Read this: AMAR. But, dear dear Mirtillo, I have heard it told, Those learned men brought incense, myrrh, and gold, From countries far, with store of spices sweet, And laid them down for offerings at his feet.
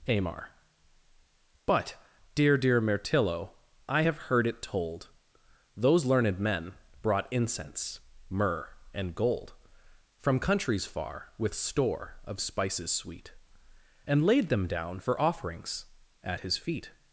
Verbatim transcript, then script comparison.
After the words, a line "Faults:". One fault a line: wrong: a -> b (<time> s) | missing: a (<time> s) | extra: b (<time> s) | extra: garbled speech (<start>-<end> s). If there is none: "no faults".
AMAR. But, dear dear Mirtillo, I have heard it told, Those learned men brought incense, myrrh, and gold, From countries far, with store of spices sweet, And laid them down for offerings at his feet.
Faults:
no faults